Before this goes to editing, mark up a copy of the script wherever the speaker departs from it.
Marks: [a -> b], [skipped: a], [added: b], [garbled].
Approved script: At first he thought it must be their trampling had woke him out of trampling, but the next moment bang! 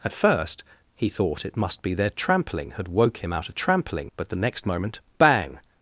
At first he thought it must be their trampling had woke him out of trampling, but the next moment bang!